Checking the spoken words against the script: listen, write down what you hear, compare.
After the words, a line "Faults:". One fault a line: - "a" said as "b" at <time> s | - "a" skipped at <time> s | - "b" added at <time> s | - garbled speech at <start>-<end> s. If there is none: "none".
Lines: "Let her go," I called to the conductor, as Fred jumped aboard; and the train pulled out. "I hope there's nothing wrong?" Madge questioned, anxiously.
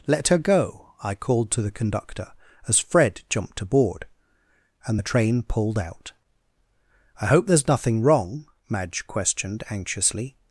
"Let her go," I called to the conductor, as Fred jumped aboard; and the train pulled out. "I hope there's nothing wrong?" Madge questioned, anxiously.
Faults:
none